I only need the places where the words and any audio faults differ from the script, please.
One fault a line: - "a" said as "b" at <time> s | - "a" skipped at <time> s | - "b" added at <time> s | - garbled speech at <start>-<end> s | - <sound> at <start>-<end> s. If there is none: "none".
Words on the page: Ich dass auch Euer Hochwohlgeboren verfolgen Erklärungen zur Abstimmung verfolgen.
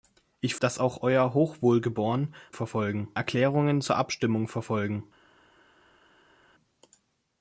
none